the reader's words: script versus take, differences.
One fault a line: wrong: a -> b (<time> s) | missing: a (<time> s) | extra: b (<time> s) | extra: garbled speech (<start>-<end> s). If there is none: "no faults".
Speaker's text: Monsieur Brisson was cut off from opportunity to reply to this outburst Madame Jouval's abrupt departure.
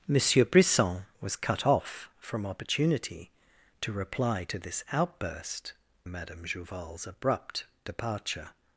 no faults